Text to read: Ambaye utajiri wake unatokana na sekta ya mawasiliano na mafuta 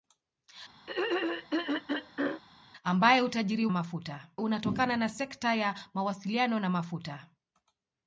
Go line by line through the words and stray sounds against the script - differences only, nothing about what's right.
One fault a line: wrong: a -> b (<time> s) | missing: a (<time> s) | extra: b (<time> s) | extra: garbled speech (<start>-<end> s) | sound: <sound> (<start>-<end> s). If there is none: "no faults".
sound: throat clearing (0.9-2.4 s)
wrong: wake -> mafuta (3.7 s)